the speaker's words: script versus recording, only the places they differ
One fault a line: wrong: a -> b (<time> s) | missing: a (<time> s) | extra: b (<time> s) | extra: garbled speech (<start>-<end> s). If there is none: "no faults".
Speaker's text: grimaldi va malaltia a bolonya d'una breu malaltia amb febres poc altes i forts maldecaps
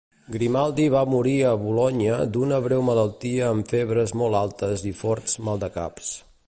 wrong: malaltia -> morir (1.1 s)
wrong: poc -> molt (4.2 s)